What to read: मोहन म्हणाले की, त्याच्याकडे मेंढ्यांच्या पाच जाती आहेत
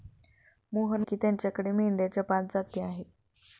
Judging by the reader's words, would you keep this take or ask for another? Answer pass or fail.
fail